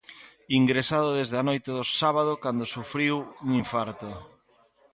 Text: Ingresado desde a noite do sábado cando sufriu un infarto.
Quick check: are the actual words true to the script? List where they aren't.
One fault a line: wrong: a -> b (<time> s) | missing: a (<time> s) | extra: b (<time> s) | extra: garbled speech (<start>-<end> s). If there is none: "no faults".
no faults